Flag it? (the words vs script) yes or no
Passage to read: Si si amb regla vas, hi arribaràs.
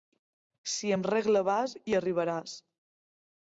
yes